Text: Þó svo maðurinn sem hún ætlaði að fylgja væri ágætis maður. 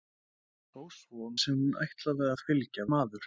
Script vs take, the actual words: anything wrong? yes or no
yes